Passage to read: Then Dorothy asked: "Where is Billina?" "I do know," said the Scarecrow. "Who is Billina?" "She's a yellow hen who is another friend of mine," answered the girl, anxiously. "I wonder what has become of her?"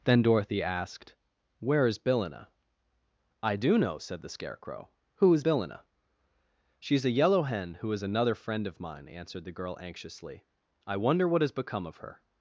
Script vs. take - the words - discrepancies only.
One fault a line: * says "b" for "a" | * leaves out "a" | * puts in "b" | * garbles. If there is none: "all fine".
all fine